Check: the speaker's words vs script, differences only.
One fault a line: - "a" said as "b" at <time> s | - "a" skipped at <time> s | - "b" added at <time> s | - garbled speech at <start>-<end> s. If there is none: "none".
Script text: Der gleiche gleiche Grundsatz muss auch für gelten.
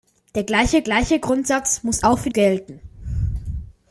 none